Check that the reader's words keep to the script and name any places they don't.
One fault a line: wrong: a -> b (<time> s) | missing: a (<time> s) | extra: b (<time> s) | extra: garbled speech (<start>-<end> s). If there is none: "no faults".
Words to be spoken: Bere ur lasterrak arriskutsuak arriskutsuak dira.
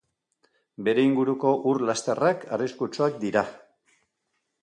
extra: inguruko (1.1 s)
missing: arriskutsuak (3.2 s)